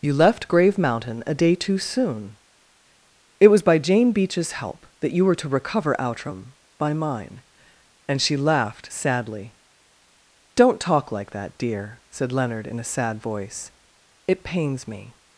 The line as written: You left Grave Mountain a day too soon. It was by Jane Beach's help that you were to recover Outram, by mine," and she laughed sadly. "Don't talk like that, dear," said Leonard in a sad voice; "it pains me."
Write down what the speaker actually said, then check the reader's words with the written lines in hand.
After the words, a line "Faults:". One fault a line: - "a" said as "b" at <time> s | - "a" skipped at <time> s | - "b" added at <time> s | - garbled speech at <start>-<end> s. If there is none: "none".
You left Grave Mountain a day too soon. It was by Jane Beach's help that you were to recover Outram, by mine," and she laughed sadly. "Don't talk like that, dear," said Leonard in a sad voice; "it pains me."
Faults:
none